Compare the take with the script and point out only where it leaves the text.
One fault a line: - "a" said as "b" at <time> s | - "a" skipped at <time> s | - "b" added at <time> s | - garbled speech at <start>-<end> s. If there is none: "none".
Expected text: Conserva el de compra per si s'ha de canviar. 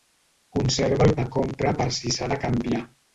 none